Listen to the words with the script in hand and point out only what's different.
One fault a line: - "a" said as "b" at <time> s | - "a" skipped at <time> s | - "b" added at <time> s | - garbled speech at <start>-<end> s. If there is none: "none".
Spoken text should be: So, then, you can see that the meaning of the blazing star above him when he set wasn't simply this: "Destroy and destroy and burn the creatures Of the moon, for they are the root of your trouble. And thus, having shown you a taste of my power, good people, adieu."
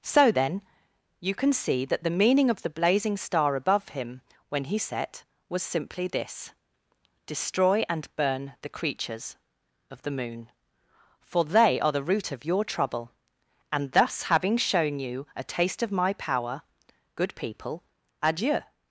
- "wasn't" said as "was" at 5.5 s
- "destroy and" skipped at 8.1 s